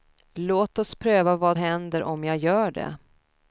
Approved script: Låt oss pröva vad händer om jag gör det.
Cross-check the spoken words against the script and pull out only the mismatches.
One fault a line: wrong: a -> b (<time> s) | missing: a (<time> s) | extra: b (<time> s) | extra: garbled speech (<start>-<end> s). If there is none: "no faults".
no faults